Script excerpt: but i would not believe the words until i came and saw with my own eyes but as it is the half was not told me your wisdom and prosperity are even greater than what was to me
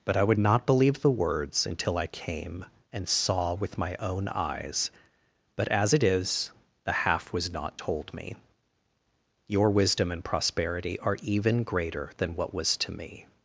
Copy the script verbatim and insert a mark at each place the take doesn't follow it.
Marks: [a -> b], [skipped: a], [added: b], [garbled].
but i would not believe the words until i came and saw with my own eyes but as it is the half was not told me your wisdom and prosperity are even greater than what was to me